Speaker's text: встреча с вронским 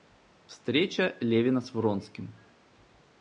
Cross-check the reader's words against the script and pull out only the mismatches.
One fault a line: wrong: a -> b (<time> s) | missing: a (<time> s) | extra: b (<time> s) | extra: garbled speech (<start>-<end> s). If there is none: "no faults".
extra: левина (1.2 s)